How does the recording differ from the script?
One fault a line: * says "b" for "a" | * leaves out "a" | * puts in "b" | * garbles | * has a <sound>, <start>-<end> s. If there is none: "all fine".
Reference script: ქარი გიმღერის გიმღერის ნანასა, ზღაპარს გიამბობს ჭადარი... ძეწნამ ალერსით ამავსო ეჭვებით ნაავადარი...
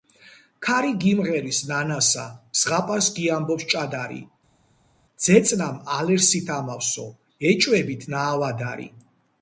* leaves out "გიმღერის"